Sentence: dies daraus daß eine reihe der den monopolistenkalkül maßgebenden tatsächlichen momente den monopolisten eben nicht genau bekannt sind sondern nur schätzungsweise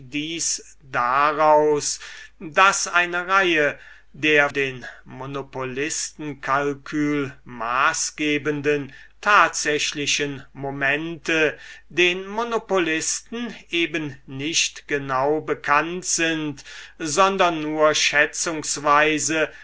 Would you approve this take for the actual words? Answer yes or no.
yes